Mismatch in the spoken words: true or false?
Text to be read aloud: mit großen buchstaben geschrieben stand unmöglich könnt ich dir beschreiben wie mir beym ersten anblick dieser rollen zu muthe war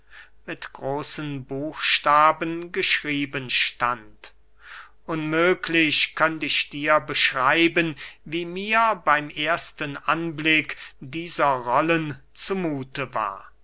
false